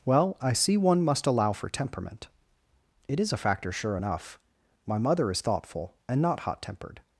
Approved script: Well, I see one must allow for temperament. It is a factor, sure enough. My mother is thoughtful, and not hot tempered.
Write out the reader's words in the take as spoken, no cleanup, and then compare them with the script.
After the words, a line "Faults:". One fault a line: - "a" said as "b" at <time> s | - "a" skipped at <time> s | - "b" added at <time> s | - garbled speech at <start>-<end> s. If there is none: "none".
Well, I see one must allow for temperament. It is a factor, sure enough. My mother is thoughtful, and not hot tempered.
Faults:
none